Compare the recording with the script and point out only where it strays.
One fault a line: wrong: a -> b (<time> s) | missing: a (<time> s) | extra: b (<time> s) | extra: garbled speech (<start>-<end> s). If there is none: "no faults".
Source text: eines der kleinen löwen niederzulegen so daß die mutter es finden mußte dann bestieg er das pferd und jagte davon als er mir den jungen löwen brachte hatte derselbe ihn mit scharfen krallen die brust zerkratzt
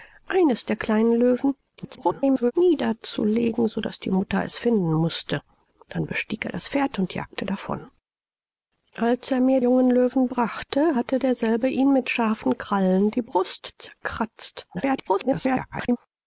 extra: garbled speech (1.8-2.5 s)
missing: den (9.6 s)
extra: garbled speech (14.7-16.0 s)